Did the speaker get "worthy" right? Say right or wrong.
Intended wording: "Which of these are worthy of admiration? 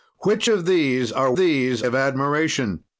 wrong